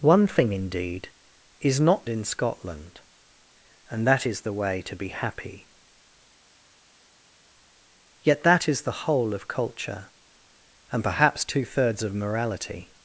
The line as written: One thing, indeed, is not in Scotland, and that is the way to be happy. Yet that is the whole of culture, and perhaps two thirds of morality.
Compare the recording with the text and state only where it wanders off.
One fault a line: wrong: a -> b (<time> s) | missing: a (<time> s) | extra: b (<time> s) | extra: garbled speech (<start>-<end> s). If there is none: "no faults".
no faults